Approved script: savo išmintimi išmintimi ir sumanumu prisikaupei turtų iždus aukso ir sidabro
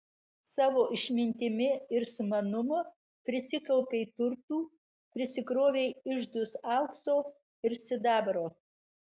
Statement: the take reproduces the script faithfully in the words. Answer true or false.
false